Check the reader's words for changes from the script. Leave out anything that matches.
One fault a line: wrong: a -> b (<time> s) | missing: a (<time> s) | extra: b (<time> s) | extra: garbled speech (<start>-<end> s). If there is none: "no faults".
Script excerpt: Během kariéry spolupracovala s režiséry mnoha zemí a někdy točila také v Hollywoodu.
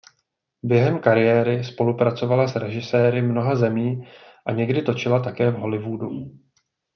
no faults